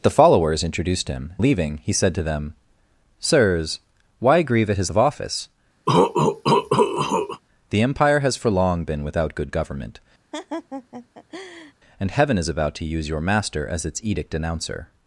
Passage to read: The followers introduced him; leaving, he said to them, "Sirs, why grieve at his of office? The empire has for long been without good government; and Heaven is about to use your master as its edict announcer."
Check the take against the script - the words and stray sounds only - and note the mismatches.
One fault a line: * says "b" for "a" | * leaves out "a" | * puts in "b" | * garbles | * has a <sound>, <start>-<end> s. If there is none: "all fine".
* has a cough, 5.9-7.4 s
* has a laugh, 10.3-11.7 s